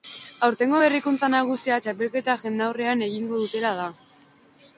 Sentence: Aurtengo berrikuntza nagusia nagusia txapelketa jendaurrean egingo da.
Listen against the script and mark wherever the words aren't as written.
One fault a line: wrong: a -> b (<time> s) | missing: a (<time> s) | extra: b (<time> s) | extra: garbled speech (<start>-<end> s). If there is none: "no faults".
missing: nagusia (1.8 s)
extra: dutela (3.4 s)